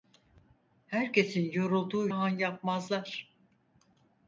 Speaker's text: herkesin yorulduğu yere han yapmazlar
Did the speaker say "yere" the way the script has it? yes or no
no